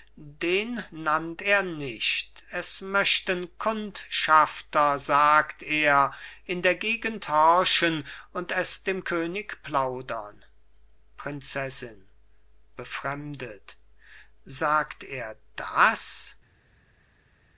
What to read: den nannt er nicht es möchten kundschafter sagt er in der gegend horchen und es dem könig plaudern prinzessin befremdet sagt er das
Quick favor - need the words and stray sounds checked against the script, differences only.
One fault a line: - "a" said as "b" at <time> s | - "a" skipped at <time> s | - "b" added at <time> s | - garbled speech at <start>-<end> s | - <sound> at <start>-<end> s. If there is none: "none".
none